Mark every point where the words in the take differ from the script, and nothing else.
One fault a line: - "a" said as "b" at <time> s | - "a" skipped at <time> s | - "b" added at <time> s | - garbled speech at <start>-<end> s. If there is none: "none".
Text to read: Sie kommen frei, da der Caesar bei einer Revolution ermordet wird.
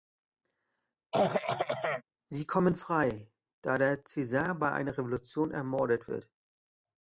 none